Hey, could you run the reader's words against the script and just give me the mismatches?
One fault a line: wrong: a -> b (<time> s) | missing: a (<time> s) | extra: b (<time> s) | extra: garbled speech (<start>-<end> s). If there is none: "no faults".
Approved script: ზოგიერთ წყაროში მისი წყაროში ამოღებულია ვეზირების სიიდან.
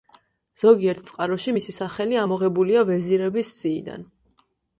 wrong: წყაროში -> სახელი (1.8 s)